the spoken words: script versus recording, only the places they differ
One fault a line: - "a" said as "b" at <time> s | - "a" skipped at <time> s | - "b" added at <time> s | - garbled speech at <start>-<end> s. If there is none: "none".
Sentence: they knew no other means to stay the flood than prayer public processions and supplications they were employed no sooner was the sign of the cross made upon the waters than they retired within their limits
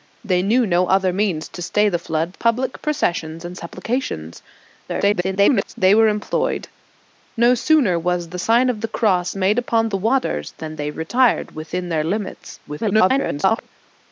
- "than prayer" skipped at 2.3 s
- garbled speech at 4.9-5.7 s
- garbled speech at 12.7-13.7 s